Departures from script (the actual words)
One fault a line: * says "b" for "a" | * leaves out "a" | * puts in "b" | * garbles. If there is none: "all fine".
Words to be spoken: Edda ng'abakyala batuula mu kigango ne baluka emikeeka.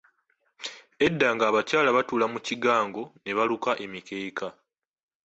all fine